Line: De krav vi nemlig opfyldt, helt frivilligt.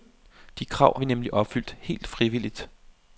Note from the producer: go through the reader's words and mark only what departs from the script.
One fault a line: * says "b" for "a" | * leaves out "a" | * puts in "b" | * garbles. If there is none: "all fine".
all fine